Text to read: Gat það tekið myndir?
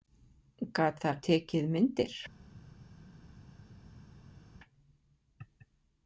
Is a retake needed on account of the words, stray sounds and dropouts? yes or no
no